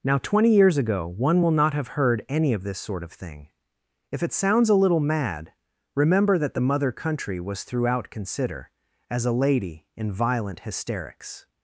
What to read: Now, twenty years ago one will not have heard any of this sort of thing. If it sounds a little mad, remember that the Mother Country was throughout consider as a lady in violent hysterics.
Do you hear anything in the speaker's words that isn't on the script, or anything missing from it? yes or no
no